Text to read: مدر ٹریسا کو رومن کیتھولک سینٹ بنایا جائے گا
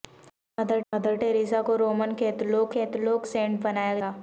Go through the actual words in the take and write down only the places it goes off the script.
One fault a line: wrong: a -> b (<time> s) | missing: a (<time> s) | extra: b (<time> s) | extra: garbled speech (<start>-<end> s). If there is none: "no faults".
extra: مدر (0.9 s)
extra: کیتھولک (2.7 s)
missing: جائے (4.0 s)